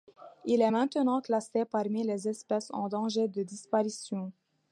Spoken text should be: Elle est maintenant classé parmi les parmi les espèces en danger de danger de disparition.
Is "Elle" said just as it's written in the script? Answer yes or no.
no